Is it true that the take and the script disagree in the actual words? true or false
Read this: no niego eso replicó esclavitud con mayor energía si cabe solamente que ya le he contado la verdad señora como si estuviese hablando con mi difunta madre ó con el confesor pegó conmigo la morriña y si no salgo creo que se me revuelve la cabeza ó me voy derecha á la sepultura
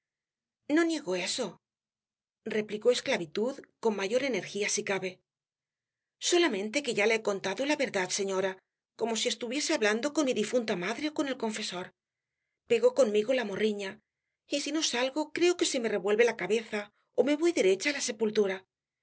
false